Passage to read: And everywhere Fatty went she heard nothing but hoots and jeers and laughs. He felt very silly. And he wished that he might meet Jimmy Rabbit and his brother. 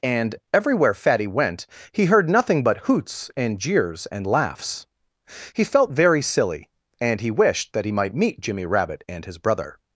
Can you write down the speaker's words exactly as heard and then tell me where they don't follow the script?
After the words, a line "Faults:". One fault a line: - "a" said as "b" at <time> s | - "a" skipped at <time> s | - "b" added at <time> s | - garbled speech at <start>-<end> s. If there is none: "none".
And everywhere Fatty went he heard nothing but hoots and jeers and laughs. He felt very silly. And he wished that he might meet Jimmy Rabbit and his brother.
Faults:
- "she" said as "he" at 1.9 s